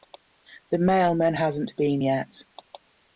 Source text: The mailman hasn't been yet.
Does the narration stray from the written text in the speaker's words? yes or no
no